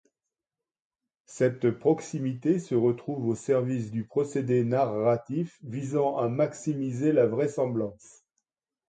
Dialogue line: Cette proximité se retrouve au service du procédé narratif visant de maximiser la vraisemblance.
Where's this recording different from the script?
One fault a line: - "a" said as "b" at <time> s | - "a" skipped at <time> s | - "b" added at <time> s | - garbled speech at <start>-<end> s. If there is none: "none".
- "de" said as "à" at 6.2 s